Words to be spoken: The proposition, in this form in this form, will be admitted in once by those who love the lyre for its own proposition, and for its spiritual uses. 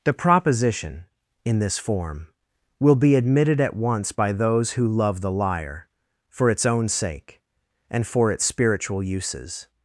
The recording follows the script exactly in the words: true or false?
false